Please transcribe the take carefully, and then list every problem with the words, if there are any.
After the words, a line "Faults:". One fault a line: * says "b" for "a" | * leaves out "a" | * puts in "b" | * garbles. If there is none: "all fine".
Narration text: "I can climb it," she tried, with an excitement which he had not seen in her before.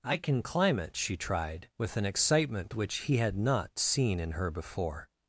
"I can climb it," she tried, with an excitement which he had not seen in her before.
Faults:
all fine